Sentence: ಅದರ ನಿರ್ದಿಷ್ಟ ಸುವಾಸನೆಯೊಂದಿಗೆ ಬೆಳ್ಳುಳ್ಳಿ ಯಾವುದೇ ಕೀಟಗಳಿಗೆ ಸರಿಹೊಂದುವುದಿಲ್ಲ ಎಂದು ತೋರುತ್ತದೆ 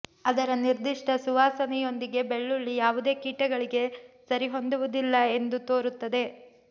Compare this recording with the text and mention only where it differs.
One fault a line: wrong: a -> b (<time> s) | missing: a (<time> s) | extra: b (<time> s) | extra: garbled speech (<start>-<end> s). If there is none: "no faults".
no faults